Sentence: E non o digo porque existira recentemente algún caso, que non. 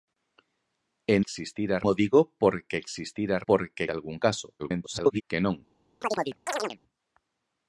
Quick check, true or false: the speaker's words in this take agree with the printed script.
false